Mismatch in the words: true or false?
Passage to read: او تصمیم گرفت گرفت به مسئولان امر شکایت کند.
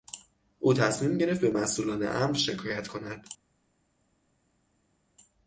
true